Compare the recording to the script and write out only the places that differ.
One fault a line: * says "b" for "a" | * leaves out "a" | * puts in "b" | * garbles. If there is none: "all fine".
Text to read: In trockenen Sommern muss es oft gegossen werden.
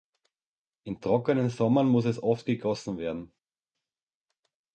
all fine